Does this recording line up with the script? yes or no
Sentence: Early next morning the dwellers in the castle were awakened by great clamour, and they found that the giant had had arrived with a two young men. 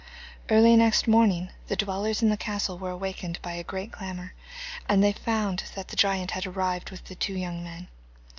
no